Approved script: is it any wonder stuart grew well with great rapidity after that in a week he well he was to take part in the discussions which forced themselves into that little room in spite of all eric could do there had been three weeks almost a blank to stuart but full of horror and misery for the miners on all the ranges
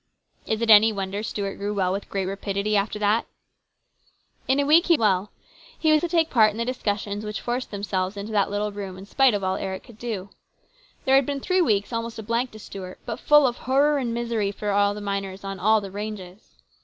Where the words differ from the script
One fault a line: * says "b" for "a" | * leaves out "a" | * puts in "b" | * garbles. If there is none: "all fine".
all fine